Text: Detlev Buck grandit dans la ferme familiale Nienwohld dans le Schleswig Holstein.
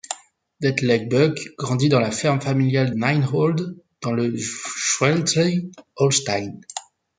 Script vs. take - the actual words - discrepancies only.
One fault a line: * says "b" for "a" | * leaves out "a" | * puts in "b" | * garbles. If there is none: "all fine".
all fine